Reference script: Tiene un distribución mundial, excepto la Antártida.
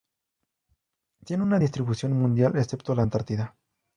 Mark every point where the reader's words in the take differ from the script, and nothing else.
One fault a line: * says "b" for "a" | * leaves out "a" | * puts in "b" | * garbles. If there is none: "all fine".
* says "una" for "un"